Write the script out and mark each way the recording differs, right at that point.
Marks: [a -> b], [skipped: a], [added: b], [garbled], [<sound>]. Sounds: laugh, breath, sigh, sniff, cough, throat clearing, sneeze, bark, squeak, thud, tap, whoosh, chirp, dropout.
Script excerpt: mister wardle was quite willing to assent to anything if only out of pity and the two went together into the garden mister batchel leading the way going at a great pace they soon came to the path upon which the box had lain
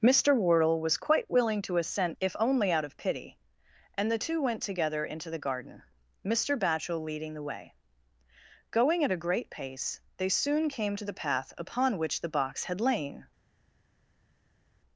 mister wardle was quite willing to assent [skipped: to anything] if only out of pity and the two went together into the garden mister batchel leading the way going at a great pace they soon came to the path upon which the box had lain